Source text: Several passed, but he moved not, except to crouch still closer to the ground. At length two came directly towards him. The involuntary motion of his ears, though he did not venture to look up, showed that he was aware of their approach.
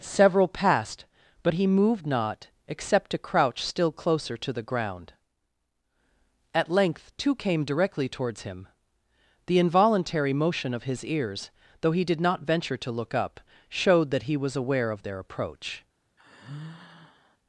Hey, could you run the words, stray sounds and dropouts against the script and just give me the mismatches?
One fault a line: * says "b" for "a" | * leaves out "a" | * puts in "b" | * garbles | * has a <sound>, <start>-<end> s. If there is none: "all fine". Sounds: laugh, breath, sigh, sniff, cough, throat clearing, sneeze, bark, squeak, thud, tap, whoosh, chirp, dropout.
* has a sigh, 16.2-17.4 s